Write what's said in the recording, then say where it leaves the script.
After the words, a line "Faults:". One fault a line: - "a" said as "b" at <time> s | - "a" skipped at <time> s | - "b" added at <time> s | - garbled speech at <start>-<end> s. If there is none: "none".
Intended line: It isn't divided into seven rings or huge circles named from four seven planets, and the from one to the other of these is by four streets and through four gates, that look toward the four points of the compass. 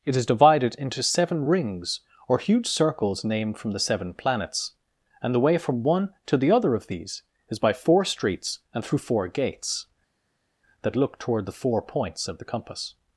It is divided into seven rings or huge circles named from the seven planets, and the way from one to the other of these is by four streets and through four gates, that look toward the four points of the compass.
Faults:
- "isn't" said as "is" at 0.1 s
- "four" said as "the" at 3.7 s
- "way" added at 5.4 s